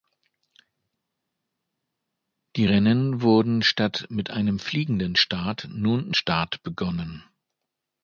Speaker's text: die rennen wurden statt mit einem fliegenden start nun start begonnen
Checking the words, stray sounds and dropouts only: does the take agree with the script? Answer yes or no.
yes